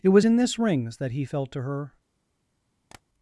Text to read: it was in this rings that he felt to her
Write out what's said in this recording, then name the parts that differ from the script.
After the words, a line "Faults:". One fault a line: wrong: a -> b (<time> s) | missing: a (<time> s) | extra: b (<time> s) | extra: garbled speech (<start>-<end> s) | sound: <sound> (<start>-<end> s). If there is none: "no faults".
it was in this rings that he felt to her
Faults:
sound: tap (2.9-3.0 s)